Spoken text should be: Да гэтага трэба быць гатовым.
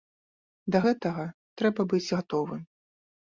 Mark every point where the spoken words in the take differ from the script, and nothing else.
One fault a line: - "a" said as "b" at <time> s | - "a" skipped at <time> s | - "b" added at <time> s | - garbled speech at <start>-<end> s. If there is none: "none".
none